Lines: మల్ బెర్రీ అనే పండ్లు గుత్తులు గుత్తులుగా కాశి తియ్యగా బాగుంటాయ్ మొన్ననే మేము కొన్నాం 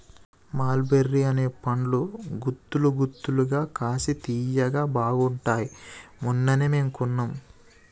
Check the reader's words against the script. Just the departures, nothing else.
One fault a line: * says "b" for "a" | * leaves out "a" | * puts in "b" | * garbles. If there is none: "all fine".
all fine